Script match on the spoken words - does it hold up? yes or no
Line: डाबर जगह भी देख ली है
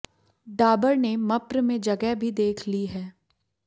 no